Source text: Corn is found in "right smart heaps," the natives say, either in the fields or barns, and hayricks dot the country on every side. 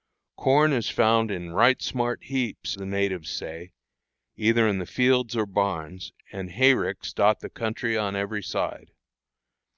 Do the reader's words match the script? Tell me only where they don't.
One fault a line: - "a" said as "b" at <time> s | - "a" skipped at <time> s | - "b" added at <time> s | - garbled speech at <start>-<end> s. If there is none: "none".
none